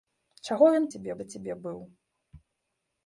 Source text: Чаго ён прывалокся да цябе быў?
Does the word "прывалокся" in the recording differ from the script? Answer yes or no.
yes